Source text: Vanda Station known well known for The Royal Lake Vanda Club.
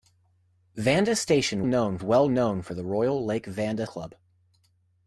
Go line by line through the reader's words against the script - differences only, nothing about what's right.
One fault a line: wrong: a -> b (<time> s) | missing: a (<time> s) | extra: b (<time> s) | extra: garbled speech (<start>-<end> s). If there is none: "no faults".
no faults